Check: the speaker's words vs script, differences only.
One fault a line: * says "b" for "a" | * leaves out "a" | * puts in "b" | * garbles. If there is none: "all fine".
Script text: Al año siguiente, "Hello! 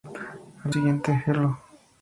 * leaves out "año"